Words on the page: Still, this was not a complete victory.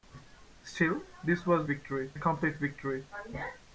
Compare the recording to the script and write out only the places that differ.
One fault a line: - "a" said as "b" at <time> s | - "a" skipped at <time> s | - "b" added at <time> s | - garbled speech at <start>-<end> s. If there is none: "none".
- "not" said as "victory" at 1.7 s